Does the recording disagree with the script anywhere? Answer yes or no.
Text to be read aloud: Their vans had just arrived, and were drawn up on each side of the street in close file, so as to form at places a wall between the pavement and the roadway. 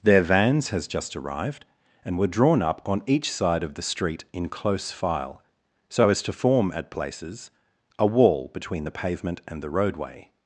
yes